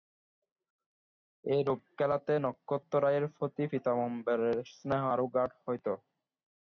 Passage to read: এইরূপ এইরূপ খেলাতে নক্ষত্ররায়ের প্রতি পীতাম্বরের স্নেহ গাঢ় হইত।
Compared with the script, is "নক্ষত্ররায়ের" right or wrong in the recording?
right